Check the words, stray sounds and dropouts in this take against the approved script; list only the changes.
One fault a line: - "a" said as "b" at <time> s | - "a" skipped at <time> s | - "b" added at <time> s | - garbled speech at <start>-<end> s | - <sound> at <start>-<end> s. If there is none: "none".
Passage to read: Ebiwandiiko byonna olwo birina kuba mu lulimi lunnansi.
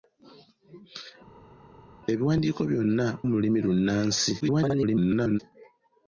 - "olwo birina kuba" skipped at 3.1 s
- garbled speech at 4.4-5.4 s